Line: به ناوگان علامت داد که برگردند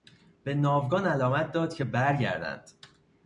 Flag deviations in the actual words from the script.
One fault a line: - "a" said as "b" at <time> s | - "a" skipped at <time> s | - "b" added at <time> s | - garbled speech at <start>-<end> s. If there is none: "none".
none